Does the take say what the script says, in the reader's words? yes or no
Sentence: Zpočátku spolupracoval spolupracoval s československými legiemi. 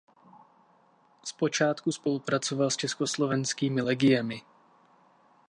no